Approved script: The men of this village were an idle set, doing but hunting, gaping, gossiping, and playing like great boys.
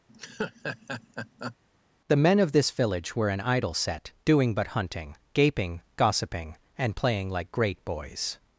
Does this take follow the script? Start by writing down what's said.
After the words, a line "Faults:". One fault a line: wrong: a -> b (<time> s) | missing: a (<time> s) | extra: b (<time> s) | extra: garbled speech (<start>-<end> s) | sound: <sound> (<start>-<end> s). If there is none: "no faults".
The men of this village were an idle set, doing but hunting, gaping, gossiping, and playing like great boys.
Faults:
sound: laugh (0.1-1.6 s)